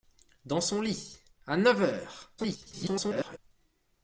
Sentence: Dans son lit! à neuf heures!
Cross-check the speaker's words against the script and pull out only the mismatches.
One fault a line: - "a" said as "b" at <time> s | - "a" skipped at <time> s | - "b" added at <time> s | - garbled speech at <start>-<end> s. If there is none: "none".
- garbled speech at 2.4-3.4 s